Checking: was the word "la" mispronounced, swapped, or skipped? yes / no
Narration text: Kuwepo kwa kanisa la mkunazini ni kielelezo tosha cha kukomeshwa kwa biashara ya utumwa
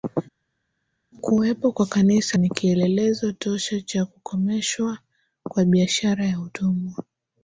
yes